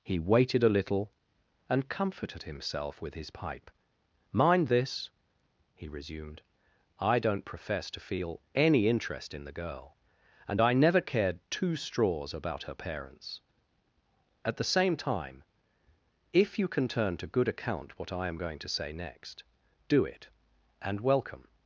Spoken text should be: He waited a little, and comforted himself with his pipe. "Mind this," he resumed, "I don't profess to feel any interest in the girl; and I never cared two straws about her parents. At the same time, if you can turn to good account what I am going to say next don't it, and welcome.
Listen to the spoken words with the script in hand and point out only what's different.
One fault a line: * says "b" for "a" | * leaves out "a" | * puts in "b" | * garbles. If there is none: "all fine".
* says "do" for "don't"